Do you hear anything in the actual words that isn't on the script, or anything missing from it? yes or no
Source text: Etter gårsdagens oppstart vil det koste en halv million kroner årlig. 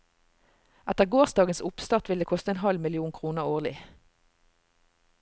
no